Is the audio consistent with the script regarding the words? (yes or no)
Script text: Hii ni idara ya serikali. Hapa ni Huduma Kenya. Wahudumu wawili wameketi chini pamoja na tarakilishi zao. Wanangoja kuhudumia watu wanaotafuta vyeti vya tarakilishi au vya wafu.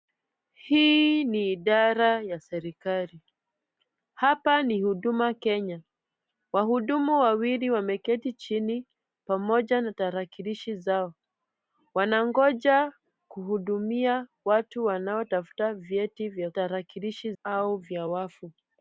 yes